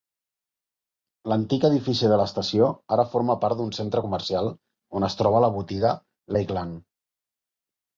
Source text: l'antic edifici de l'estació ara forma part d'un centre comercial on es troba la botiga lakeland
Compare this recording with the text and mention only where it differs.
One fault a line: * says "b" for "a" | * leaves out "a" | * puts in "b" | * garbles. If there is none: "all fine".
all fine